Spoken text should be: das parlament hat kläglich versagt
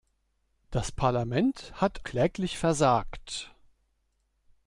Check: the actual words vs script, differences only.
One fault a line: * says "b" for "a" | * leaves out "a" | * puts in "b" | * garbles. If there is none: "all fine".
all fine